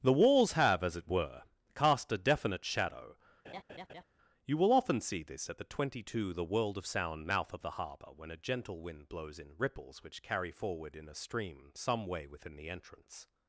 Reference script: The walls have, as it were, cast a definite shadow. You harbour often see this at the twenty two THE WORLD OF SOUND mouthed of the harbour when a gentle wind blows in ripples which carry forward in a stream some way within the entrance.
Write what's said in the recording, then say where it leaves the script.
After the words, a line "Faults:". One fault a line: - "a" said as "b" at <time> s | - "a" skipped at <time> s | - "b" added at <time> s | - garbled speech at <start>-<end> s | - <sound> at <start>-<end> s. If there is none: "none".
The walls have, as it were, cast a definite shadow. You will often see this at the twenty two THE WORLD OF SOUND mouth of the harbour when a gentle wind blows in ripples which carry forward in a stream some way within the entrance.
Faults:
- laugh at 3.4-4.0 s
- "harbour" said as "will" at 4.6 s
- "mouthed" said as "mouth" at 7.2 s